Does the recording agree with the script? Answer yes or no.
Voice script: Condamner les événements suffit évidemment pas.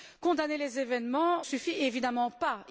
yes